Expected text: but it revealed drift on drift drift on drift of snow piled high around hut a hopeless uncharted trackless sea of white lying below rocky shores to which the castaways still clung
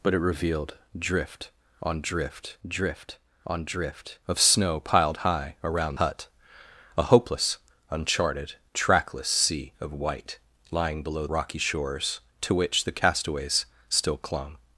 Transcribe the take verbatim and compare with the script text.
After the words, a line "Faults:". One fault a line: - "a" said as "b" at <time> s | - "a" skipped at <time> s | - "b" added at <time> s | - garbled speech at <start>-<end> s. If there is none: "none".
but it revealed drift on drift drift on drift of snow piled high around hut a hopeless uncharted trackless sea of white lying below rocky shores to which the castaways still clung
Faults:
none